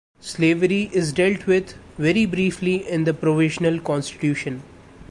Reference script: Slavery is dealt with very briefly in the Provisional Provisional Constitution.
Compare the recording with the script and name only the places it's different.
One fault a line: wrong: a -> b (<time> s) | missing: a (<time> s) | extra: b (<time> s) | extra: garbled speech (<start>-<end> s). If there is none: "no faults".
missing: Provisional (3.8 s)